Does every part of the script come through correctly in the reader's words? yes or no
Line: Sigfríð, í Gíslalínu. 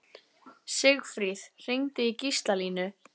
no